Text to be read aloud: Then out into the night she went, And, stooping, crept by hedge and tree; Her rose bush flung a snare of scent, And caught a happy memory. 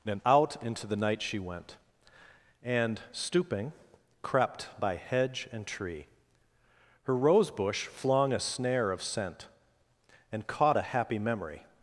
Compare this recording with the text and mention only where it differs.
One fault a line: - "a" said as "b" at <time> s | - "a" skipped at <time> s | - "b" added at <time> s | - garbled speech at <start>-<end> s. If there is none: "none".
- "Then" said as "And" at 0.1 s